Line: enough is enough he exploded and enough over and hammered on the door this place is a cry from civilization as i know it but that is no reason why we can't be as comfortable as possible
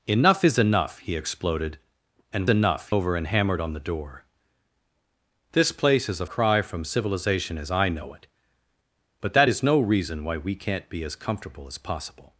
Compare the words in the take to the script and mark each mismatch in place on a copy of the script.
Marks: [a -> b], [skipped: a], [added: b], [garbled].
enough is enough he exploded and enough over and hammered on the door this place is a cry from civilization as i know it but that is no reason why we can't be as comfortable as possible